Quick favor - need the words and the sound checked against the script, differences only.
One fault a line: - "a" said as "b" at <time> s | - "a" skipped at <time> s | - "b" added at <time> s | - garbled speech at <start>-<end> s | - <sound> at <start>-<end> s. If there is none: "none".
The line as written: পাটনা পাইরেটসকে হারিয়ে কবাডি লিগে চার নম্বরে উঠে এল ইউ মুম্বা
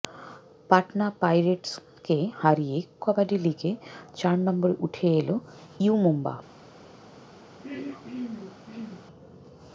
- throat clearing at 7.6-9.1 s